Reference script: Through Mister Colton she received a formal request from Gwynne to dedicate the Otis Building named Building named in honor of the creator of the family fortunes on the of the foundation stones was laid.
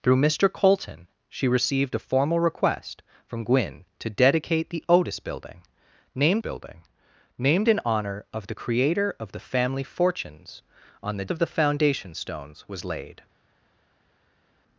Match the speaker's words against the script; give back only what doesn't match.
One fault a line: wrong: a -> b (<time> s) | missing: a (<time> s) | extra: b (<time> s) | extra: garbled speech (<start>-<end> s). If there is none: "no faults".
no faults